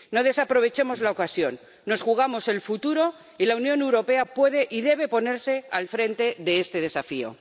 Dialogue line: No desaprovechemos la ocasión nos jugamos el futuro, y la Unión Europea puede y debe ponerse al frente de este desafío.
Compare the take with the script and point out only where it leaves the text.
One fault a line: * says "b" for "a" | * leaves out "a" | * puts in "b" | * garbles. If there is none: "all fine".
all fine